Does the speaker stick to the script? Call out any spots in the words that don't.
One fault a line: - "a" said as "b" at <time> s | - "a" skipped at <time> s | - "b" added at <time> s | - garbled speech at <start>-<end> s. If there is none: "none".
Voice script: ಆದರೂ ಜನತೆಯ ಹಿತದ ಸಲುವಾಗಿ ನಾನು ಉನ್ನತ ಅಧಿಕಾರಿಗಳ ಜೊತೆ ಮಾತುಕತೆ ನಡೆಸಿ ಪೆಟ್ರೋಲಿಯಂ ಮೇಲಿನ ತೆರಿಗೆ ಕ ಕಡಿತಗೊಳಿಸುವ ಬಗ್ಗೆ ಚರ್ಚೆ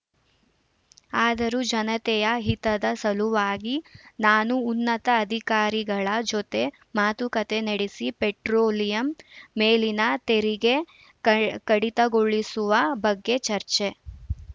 none